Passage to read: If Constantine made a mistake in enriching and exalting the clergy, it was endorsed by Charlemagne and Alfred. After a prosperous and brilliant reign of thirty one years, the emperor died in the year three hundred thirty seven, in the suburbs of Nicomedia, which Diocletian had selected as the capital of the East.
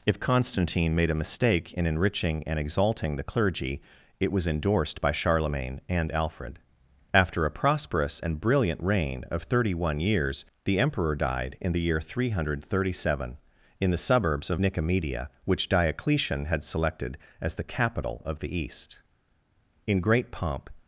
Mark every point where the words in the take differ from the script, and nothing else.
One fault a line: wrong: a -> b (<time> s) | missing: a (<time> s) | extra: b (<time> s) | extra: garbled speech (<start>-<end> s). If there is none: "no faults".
extra: In great pomp (19.9 s)